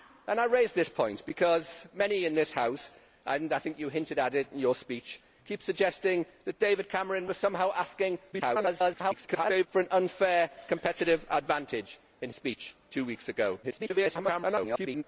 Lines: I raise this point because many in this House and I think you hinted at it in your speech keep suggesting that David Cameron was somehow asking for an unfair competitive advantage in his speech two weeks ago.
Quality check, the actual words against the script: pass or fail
fail